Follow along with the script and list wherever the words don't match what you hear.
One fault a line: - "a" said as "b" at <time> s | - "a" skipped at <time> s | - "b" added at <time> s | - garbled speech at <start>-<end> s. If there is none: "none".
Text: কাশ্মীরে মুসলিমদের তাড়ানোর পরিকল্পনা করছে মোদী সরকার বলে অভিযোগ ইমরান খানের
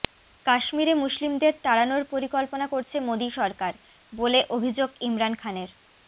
none